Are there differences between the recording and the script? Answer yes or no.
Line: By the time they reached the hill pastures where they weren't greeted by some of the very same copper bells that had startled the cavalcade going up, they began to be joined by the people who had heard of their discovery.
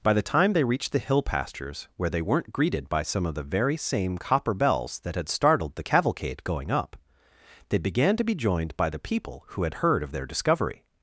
no